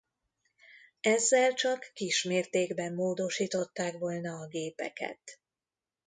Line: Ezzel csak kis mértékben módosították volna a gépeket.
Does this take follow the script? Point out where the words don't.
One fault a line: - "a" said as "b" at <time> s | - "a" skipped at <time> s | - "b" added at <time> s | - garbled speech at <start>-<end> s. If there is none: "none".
none